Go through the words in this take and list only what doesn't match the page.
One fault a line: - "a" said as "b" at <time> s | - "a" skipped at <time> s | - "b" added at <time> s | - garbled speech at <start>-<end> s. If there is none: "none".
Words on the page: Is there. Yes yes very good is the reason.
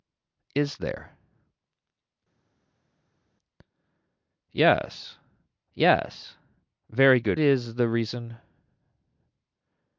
none